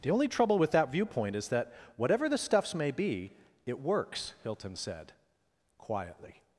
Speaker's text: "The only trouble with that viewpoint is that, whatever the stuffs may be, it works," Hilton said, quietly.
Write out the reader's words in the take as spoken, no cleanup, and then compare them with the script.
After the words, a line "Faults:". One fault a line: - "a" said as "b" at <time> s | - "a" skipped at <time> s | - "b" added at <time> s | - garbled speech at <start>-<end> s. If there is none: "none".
"The only trouble with that viewpoint is that, whatever the stuffs may be, it works," Hilton said, quietly.
Faults:
none